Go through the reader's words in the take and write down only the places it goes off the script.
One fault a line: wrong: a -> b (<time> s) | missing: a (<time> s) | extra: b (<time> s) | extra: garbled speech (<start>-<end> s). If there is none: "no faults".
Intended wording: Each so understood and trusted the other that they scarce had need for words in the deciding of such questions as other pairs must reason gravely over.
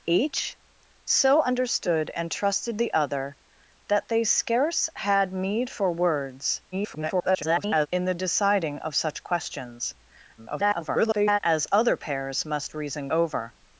extra: garbled speech (6.7-7.9 s)
extra: garbled speech (10.4-11.4 s)
missing: gravely (13.1 s)